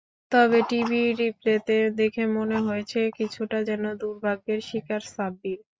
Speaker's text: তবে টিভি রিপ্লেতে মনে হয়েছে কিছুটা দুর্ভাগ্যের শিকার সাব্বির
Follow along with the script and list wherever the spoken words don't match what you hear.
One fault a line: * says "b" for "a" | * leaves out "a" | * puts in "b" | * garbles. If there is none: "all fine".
* puts in "দেখে"
* puts in "যেন"